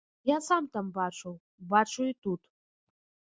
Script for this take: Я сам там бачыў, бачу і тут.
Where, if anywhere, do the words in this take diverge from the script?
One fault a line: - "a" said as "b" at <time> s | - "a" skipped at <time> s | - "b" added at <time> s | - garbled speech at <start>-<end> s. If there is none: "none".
none